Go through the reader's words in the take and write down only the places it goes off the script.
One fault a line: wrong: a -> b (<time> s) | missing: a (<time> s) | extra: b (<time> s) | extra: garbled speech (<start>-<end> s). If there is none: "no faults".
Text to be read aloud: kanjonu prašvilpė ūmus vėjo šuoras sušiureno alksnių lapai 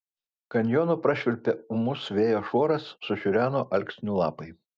no faults